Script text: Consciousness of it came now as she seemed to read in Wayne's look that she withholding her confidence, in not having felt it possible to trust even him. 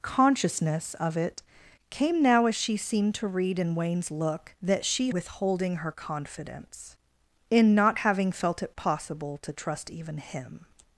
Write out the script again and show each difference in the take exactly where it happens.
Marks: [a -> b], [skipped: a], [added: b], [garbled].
Consciousness of it came now as she seemed to read in Wayne's look that she withholding her confidence, in not having felt it possible to trust even him.